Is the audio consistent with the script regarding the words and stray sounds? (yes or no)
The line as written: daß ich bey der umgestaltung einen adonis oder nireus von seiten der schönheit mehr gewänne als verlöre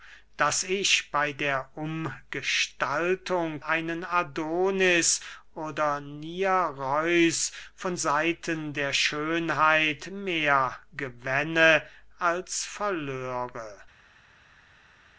yes